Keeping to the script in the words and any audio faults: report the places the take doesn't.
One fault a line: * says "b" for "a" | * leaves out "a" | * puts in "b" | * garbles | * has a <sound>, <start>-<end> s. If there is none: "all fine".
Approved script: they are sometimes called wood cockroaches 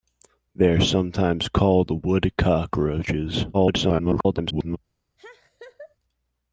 * garbles
* has a laugh, 5.2-6.0 s